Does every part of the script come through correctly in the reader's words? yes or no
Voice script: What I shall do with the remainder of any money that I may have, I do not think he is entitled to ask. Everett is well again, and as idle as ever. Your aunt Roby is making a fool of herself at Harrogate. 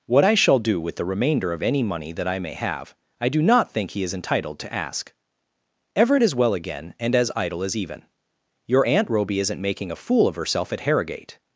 no